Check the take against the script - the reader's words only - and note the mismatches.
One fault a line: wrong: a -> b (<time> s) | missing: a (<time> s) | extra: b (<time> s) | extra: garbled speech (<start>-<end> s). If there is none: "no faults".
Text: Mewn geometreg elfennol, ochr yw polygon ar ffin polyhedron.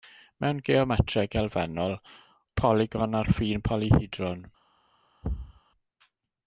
missing: ochr yw (1.9 s)